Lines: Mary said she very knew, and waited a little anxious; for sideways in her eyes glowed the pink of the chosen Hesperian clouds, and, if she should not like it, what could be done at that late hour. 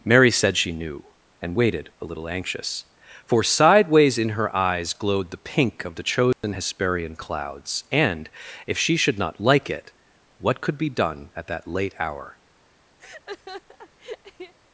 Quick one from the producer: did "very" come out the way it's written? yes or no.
no